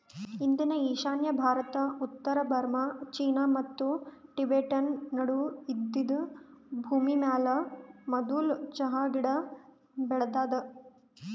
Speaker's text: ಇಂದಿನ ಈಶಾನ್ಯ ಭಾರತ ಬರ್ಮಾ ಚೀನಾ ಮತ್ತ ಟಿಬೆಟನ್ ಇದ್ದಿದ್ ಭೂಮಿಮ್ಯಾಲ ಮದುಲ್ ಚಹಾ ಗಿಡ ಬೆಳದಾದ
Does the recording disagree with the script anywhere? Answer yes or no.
yes